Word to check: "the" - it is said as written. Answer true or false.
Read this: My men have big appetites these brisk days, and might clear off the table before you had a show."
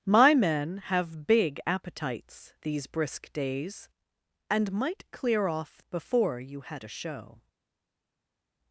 false